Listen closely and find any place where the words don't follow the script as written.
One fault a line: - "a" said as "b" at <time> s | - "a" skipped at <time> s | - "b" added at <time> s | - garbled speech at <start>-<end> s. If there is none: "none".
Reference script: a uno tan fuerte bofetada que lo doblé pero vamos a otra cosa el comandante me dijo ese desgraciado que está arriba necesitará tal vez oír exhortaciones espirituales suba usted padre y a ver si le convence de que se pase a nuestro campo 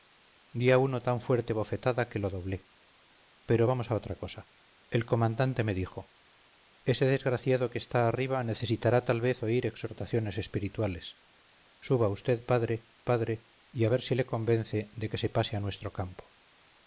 - "padre" added at 13.0 s